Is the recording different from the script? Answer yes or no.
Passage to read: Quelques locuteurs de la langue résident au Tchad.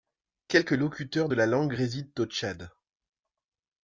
no